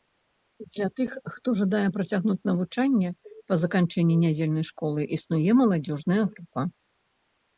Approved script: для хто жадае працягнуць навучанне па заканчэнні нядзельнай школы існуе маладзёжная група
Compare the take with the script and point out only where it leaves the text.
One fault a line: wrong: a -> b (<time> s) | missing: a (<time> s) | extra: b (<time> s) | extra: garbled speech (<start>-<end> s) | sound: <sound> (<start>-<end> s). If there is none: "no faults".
extra: тых (1.0 s)